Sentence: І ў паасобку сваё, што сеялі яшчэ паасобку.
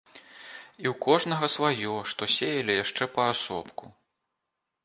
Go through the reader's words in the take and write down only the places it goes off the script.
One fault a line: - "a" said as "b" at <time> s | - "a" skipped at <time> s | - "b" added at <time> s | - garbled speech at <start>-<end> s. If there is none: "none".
- "паасобку" said as "кожнага" at 1.1 s